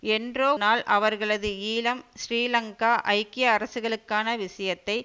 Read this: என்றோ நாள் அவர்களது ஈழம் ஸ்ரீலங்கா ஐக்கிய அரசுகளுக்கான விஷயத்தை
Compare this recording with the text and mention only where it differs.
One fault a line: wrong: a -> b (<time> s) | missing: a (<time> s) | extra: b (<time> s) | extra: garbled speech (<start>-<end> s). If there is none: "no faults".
no faults